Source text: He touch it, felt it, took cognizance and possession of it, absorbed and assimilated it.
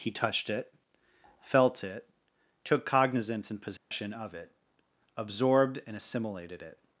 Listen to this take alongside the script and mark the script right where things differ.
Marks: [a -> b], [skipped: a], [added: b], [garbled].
He [touch -> touched] it, felt it, took cognizance and possession of it, absorbed and assimilated it.